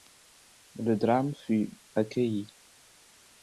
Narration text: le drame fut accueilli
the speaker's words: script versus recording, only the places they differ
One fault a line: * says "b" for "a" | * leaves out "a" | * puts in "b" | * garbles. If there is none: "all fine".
all fine